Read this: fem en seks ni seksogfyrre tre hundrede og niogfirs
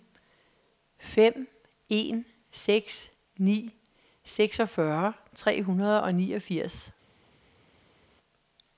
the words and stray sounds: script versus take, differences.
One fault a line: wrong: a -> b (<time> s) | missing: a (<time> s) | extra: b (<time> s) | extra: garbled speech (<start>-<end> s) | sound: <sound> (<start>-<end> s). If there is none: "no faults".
no faults